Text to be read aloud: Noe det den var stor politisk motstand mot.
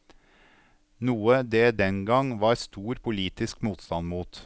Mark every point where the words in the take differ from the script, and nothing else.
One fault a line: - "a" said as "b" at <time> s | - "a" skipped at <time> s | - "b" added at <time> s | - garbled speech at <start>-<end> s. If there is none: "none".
- "gang" added at 2.0 s